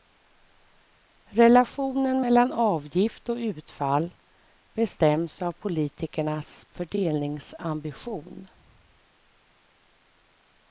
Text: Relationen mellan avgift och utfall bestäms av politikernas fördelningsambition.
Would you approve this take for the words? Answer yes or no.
yes